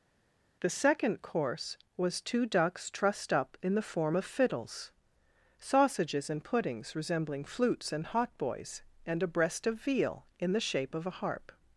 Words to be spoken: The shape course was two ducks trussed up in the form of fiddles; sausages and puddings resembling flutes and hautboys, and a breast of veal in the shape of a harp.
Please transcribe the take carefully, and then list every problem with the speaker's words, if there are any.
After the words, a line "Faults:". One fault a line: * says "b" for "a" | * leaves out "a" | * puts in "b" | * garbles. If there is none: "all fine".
The second course was two ducks trussed up in the form of fiddles; sausages and puddings resembling flutes and hautboys, and a breast of veal in the shape of a harp.
Faults:
* says "second" for "shape"